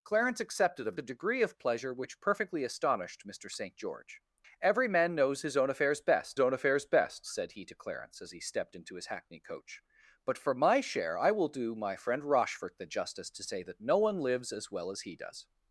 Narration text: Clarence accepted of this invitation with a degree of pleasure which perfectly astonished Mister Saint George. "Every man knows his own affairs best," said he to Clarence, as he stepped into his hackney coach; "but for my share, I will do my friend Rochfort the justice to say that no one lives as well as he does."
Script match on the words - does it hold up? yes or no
no